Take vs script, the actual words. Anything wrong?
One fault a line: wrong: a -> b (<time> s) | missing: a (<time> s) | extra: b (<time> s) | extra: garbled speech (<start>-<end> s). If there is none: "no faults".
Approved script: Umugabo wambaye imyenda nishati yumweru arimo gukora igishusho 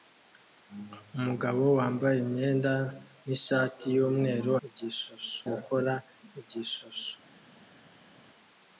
wrong: arimo -> igishusho (4.7 s)